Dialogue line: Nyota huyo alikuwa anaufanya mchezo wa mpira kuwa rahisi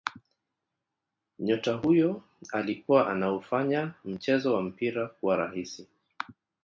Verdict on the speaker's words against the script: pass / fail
pass